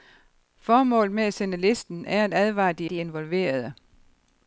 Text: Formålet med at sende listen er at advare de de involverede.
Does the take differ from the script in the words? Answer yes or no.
no